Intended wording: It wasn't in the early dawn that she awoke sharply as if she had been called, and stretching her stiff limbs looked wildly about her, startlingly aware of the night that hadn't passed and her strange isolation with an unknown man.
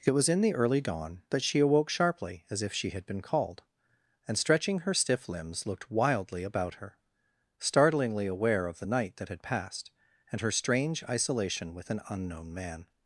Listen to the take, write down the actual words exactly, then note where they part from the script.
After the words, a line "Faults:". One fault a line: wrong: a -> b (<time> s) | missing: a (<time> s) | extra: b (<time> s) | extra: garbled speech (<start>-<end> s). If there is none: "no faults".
It was in the early dawn that she awoke sharply as if she had been called, and stretching her stiff limbs looked wildly about her, startlingly aware of the night that had passed and her strange isolation with an unknown man.
Faults:
wrong: wasn't -> was (0.1 s)
wrong: hadn't -> had (9.3 s)